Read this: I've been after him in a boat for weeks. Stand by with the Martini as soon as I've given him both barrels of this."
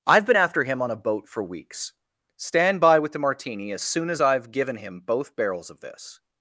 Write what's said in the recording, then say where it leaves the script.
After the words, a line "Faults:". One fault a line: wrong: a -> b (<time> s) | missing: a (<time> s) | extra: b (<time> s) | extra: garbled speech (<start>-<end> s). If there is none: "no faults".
I've been after him on a boat for weeks. Stand by with the Martini as soon as I've given him both barrels of this."
Faults:
wrong: in -> on (0.8 s)